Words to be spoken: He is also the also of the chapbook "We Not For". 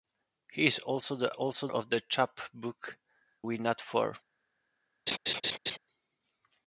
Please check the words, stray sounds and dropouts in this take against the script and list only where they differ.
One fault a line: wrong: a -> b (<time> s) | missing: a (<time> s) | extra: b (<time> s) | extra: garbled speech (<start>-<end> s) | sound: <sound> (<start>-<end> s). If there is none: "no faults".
sound: laugh (5.1-5.8 s)